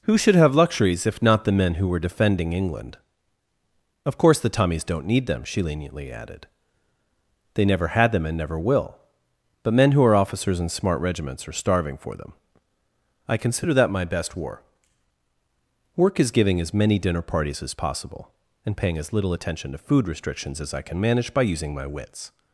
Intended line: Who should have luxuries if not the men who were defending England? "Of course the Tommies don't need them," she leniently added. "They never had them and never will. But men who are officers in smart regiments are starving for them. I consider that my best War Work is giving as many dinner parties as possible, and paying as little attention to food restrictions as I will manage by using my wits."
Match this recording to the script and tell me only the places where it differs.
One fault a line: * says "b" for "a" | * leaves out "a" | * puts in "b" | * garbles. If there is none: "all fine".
* says "can" for "will"